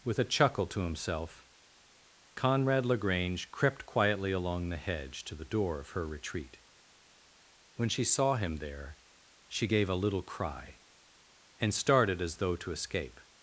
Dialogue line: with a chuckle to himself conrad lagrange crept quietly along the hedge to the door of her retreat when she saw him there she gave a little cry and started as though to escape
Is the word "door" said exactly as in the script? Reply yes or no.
yes